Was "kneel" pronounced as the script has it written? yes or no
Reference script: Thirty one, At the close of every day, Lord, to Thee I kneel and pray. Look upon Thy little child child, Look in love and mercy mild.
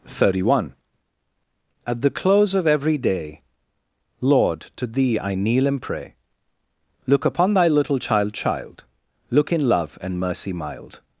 yes